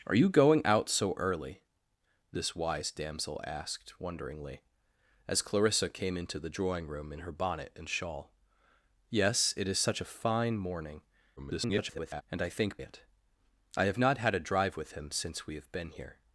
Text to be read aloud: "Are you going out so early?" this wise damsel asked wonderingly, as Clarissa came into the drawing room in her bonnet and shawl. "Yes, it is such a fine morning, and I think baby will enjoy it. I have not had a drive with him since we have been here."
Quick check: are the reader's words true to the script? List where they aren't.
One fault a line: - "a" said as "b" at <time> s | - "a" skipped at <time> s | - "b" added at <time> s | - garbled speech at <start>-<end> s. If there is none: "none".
- garbled speech at 11.4-12.2 s
- "baby will enjoy" skipped at 12.8 s